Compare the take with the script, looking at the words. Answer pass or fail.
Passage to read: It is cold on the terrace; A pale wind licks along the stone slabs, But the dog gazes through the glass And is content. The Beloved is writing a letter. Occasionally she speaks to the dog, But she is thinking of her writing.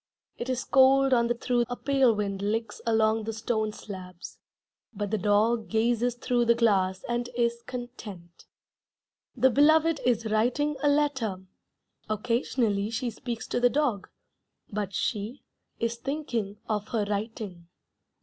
fail